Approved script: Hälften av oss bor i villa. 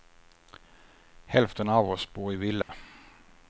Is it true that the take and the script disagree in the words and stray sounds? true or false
true